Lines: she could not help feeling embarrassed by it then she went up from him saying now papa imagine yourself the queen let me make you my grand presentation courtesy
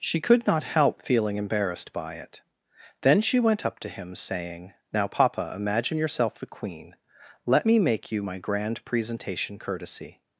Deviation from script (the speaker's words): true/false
true